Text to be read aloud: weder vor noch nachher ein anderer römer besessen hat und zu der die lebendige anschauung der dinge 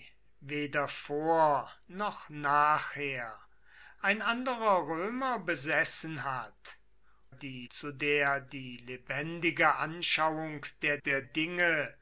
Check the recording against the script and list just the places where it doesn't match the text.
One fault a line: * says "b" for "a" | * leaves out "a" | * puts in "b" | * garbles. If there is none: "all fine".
* says "die" for "und"
* puts in "der"